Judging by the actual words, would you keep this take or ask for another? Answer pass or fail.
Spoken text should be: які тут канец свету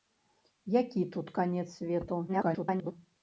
fail